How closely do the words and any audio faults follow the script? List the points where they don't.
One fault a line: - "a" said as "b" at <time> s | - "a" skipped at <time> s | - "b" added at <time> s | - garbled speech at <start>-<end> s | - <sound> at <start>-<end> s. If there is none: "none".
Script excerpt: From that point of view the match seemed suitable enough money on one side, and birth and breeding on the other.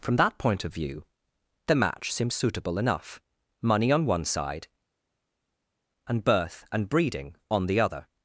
- "seemed" said as "seems" at 2.1 s